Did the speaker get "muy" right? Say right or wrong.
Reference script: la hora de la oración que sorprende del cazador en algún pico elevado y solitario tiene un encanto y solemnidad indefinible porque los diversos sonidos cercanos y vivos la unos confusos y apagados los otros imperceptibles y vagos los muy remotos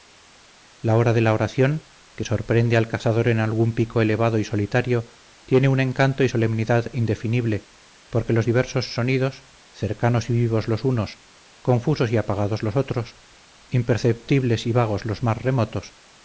wrong